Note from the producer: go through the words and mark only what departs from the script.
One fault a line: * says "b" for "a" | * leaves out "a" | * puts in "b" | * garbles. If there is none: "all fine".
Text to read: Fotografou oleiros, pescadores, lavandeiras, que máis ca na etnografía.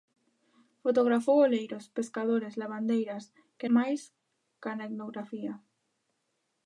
all fine